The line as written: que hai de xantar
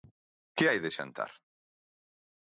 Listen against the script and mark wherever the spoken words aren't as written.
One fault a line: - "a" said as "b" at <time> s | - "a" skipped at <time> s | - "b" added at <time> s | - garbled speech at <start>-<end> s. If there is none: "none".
none